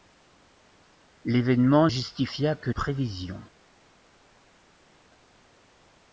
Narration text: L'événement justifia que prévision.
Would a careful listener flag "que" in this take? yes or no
no